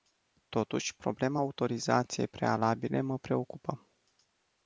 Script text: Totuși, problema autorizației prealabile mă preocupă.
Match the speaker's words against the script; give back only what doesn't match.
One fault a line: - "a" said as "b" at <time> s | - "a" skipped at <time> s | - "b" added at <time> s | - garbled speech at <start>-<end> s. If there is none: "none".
none